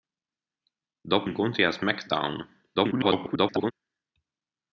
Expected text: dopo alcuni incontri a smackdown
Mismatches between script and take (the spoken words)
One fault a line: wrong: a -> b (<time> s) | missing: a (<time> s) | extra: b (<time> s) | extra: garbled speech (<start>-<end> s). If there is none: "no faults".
missing: alcuni (1.3 s)
extra: garbled speech (2.7-3.7 s)